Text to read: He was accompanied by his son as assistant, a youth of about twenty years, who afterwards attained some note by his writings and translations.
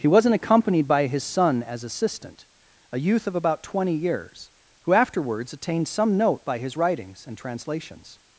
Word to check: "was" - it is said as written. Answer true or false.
false